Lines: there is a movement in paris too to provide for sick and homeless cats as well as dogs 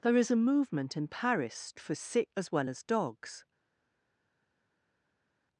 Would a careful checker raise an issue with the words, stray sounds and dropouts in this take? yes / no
yes